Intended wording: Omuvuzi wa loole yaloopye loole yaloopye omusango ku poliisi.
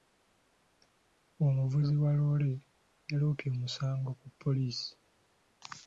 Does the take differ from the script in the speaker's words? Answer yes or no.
yes